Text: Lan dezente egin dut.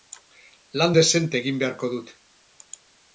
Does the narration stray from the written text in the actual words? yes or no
yes